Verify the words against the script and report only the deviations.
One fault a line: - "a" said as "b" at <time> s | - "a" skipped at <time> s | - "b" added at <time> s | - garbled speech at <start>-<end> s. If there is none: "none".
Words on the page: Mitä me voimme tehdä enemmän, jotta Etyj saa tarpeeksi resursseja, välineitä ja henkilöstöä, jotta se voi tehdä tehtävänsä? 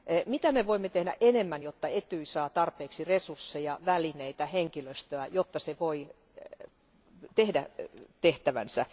none